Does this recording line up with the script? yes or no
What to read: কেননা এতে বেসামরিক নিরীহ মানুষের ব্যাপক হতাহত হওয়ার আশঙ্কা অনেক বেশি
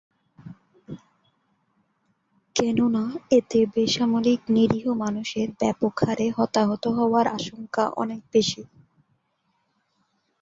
no